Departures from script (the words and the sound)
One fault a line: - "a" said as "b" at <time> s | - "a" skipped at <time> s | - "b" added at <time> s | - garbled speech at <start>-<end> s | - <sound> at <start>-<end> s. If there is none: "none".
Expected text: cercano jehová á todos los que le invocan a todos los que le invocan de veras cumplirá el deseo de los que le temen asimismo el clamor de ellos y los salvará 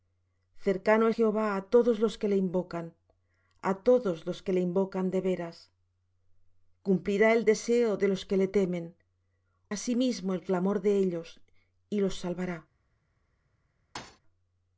- thud at 13.9-14.2 s